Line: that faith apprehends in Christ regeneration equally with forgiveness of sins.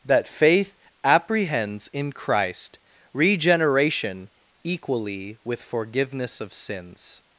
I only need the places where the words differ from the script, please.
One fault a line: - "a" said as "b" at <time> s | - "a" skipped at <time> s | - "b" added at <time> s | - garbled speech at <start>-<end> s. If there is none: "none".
none